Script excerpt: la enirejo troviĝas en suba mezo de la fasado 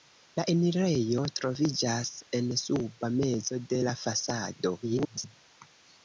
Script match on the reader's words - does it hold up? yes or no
no